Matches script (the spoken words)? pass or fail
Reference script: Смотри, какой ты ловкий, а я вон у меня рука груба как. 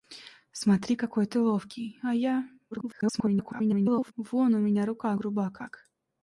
fail